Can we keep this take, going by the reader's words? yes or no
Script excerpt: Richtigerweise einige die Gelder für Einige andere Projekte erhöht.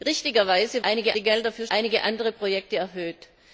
yes